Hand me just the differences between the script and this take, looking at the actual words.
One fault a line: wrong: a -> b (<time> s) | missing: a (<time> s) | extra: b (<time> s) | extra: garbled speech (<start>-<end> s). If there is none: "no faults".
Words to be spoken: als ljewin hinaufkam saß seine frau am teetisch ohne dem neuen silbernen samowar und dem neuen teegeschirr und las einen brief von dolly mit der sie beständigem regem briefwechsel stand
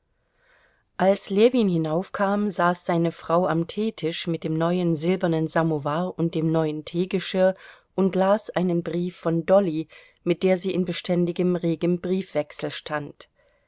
wrong: ohne -> mit (4.2 s)
extra: in (10.7 s)